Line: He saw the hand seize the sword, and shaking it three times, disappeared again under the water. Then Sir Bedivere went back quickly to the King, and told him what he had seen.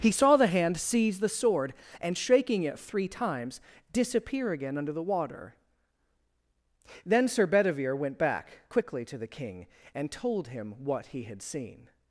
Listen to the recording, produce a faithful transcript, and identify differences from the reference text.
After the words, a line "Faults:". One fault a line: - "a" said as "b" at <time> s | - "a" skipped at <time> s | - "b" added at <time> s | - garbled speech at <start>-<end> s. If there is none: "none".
He saw the hand seize the sword, and shaking it three times, disappear again under the water. Then Sir Bedivere went back quickly to the King, and told him what he had seen.
Faults:
- "disappeared" said as "disappear" at 3.9 s